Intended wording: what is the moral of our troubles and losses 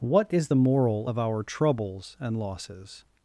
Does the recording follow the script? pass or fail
pass